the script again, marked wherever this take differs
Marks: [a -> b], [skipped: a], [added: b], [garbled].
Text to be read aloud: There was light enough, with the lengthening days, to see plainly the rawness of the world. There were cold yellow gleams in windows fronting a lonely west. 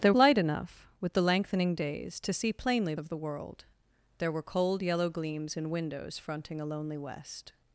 There [skipped: was] light enough, with the lengthening days, to see plainly [skipped: the rawness] of the world. There were cold yellow gleams in windows fronting a lonely west.